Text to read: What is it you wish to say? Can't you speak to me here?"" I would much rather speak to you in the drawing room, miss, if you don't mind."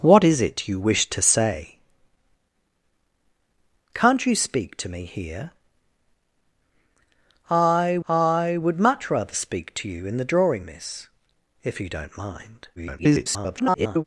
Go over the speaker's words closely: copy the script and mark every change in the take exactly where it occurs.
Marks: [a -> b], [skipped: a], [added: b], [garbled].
What is it you wish to say? Can't you speak to me here?"" I [added: I] would much rather speak to you in the drawing [skipped: room,] miss, if you don't mind." [garbled]